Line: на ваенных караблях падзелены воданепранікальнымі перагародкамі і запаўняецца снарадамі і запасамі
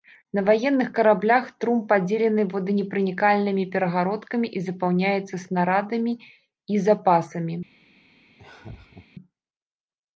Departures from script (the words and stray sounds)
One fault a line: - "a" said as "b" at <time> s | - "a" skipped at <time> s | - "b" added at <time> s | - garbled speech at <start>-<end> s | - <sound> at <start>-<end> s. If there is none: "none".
- "трум" added at 1.6 s
- laugh at 8.4-9.1 s